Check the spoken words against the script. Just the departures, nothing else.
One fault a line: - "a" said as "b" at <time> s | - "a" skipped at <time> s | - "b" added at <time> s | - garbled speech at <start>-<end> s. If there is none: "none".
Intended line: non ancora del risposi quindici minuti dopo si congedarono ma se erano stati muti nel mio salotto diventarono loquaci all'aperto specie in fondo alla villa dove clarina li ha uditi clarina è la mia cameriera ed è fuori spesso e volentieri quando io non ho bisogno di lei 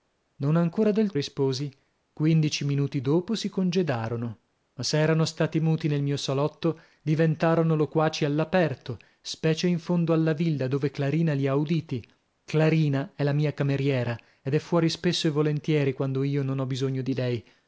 none